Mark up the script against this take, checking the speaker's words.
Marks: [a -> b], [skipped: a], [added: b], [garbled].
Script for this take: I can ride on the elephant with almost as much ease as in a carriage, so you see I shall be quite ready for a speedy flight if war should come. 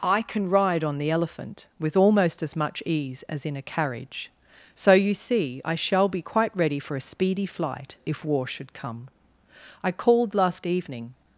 I can ride on the elephant with almost as much ease as in a carriage, so you see I shall be quite ready for a speedy flight if war should come. [added: I called last evening]